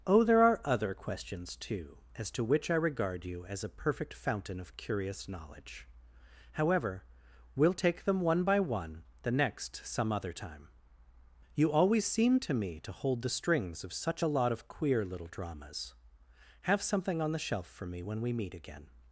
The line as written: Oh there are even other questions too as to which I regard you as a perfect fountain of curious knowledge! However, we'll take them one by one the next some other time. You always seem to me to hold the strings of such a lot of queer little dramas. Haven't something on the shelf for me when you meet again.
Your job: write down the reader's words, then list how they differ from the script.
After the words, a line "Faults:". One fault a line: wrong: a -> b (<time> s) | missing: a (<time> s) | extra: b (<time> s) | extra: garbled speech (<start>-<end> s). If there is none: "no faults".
Oh there are other questions too as to which I regard you as a perfect fountain of curious knowledge! However, we'll take them one by one the next some other time. You always seem to me to hold the strings of such a lot of queer little dramas. Have something on the shelf for me when we meet again.
Faults:
missing: even (0.6 s)
wrong: Haven't -> Have (16.6 s)
wrong: you -> we (18.2 s)